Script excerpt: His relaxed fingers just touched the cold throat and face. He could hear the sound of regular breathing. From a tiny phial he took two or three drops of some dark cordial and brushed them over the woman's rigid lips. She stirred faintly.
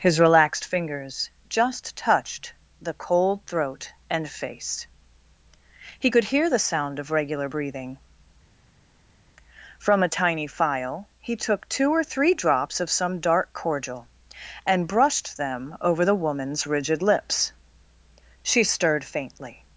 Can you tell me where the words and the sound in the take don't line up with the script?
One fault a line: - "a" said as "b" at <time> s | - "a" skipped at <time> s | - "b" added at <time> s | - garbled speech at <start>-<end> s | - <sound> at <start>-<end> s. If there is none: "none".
none